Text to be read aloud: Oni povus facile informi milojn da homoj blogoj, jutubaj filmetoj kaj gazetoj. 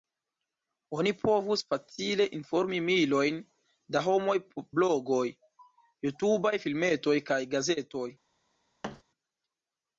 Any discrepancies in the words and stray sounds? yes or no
yes